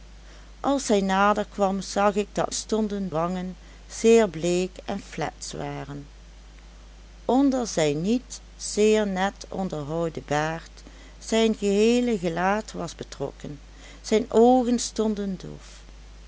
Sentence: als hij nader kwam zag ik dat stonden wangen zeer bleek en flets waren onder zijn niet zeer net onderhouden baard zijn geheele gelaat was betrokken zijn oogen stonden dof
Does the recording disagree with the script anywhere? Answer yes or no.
no